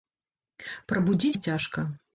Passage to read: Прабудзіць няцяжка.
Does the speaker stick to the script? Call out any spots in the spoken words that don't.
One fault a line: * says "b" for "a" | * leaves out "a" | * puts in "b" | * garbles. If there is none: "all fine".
all fine